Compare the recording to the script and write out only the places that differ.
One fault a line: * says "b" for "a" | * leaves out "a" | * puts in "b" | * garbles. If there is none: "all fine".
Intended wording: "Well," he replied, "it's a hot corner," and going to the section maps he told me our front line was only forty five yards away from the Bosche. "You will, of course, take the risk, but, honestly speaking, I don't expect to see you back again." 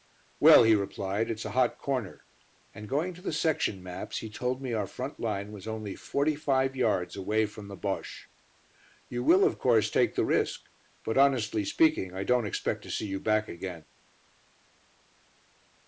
all fine